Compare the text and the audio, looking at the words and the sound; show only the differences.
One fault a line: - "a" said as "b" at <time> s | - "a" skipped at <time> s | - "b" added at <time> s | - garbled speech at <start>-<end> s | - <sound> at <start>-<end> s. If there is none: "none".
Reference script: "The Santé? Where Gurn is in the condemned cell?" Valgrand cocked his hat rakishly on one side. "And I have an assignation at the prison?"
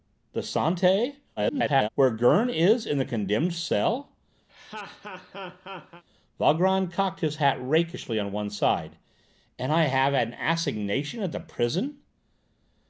- garbled speech at 1.4-1.9 s
- laugh at 4.5-6.0 s